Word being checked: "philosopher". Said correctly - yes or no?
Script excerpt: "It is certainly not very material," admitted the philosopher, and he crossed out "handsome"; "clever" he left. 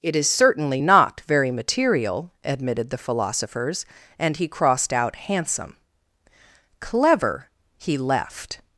no